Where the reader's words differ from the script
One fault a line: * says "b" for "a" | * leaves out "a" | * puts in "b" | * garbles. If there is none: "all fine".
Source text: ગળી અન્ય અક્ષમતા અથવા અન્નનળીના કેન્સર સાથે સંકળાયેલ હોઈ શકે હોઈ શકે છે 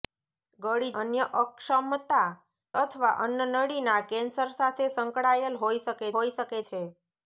all fine